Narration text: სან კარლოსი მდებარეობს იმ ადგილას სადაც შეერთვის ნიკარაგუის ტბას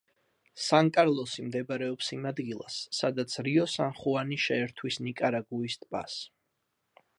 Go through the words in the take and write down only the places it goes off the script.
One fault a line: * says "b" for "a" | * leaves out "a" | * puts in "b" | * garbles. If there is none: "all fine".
* puts in "რიო სან ხუანი"